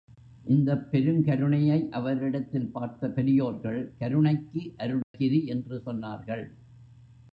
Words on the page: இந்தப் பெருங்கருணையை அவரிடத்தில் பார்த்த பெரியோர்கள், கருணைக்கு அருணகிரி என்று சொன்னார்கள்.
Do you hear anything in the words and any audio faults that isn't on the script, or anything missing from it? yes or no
yes